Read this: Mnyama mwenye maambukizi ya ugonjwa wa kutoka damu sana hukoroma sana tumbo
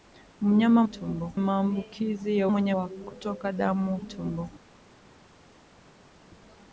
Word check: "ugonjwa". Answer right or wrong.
wrong